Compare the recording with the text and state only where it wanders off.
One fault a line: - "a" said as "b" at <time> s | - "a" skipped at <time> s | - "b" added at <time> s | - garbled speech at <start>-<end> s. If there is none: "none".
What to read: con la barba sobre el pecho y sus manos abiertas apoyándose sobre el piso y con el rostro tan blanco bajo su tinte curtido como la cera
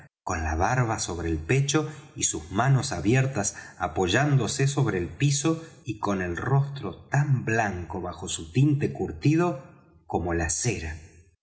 none